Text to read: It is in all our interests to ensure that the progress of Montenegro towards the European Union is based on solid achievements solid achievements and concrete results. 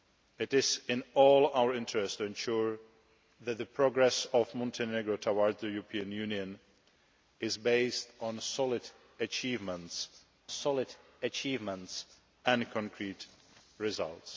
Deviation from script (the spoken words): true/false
false